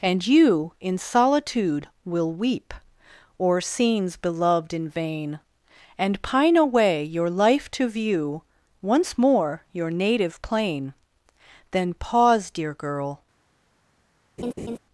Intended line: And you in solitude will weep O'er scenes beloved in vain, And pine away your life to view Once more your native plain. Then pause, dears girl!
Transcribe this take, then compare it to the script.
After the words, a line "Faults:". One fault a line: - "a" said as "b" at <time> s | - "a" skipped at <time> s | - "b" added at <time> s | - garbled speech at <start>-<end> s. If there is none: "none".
And you in solitude will weep O'er scenes beloved in vain, And pine away your life to view Once more your native plain. Then pause, dear girl!
Faults:
- "dears" said as "dear" at 12.5 s